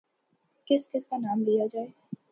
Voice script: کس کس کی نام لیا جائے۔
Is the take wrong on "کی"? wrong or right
wrong